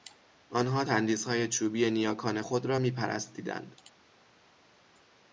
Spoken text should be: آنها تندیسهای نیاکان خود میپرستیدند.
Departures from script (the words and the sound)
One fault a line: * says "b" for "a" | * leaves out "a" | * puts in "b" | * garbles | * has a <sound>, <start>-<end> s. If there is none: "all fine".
* puts in "چوبی"
* puts in "را"